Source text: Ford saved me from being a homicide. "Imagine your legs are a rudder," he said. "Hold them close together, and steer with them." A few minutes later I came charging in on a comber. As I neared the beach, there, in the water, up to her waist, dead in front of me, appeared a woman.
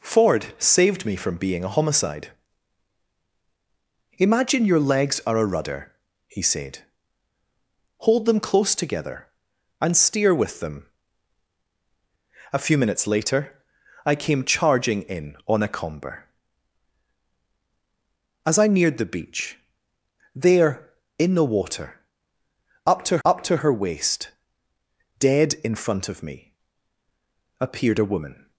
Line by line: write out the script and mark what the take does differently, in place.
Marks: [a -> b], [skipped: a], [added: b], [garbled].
Ford saved me from being a homicide. "Imagine your legs are a rudder," he said. "Hold them close together, and steer with them." A few minutes later I came charging in on a comber. As I neared the beach, there, in the water, up to [added: up to] her waist, dead in front of me, appeared a woman.